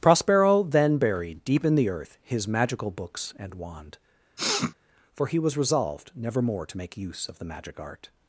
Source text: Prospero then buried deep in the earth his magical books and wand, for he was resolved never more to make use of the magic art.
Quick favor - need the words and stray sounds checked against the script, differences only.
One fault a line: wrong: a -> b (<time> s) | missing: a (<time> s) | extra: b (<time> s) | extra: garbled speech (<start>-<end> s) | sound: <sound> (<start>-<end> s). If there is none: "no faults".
sound: sniff (4.4-4.7 s)